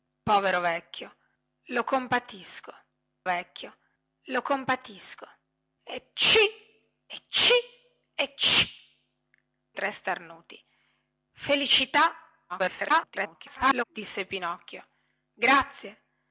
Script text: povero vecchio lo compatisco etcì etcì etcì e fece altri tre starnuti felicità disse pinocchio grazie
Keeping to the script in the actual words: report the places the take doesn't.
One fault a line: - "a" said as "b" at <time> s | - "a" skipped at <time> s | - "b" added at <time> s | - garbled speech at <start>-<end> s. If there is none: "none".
- "vecchio lo compatisco" added at 3.2 s
- "e fece altri" skipped at 8.7 s
- garbled speech at 12.5-13.8 s